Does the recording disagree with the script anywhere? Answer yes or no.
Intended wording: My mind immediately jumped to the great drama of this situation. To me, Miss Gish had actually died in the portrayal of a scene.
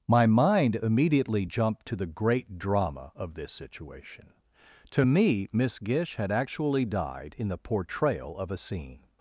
no